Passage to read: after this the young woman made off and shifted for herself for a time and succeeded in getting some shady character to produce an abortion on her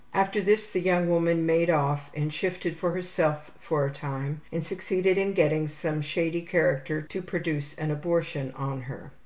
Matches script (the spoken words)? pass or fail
pass